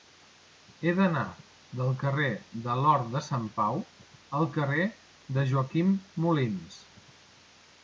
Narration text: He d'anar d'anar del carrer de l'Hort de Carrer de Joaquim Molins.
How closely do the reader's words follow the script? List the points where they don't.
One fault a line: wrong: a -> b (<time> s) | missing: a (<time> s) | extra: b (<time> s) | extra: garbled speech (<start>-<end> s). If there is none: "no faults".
missing: d'anar (1.2 s)
extra: Sant Pau al (3.3 s)